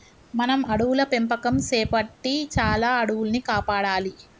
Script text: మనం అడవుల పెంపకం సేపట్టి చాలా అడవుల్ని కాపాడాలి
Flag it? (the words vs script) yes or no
no